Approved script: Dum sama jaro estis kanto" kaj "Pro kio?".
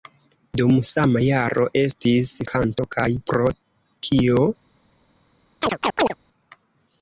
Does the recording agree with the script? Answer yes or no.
yes